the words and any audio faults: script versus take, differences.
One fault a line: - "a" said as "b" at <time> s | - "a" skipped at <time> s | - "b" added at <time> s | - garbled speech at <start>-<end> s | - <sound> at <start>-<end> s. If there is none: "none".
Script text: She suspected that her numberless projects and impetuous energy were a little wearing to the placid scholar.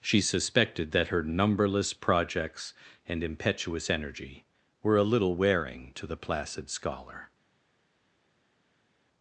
none